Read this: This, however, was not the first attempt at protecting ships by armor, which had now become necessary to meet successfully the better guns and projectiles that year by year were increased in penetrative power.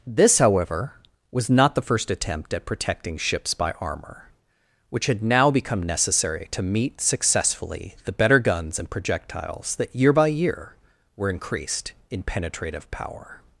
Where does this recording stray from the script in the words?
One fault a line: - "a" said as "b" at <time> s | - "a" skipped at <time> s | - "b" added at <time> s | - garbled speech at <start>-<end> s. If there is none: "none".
none